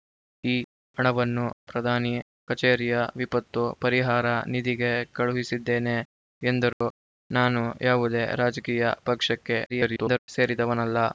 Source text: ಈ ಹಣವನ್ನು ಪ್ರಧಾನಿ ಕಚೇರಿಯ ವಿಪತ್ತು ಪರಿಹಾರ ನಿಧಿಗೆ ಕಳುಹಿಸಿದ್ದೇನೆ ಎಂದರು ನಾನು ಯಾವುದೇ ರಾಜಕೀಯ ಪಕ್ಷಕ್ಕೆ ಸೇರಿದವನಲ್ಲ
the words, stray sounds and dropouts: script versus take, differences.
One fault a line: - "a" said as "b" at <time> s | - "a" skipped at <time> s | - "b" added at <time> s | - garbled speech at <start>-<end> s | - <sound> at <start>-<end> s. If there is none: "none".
- dropout at 6.7-6.8 s
- garbled speech at 9.7-10.2 s